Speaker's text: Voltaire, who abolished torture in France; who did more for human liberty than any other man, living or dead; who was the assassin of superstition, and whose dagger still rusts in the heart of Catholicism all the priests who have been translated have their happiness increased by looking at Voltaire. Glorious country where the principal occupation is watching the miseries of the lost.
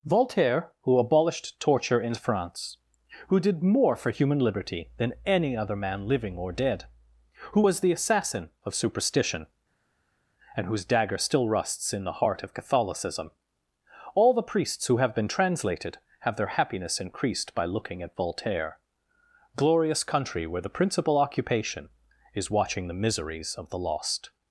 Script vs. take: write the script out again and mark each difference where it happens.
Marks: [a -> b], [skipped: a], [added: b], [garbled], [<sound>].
Voltaire, who abolished torture in France; who did more for human liberty than any other man, living or dead; who was the assassin of superstition, and whose dagger still rusts in the heart of Catholicism all the priests who have been translated have their happiness increased by looking at Voltaire. Glorious country where the principal occupation is watching the miseries of the lost.